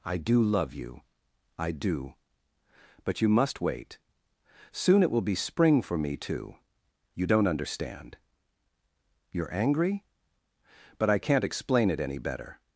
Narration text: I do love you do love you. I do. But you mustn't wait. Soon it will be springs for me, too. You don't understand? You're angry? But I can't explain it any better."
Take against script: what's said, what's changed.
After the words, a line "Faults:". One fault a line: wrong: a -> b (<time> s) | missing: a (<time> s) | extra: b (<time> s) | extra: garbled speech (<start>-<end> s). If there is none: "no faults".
I do love you. I do. But you must wait. Soon it will be spring for me, too. You don't understand? You're angry? But I can't explain it any better."
Faults:
missing: do love you (1.0 s)
wrong: mustn't -> must (3.3 s)
wrong: springs -> spring (5.3 s)